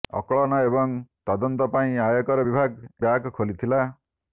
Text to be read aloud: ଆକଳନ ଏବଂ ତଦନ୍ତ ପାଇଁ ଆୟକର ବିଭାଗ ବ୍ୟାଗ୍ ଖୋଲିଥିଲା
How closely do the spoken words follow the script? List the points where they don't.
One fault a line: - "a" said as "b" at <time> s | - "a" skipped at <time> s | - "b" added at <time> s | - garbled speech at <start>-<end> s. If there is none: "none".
none